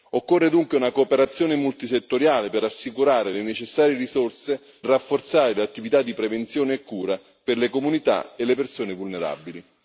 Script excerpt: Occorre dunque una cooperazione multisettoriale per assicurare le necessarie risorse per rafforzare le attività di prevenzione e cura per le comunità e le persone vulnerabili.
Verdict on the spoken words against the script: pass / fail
fail